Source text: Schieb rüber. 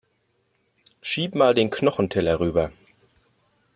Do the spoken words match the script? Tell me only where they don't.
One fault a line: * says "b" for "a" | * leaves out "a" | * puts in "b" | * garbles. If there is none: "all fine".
* puts in "mal den Knochenteller"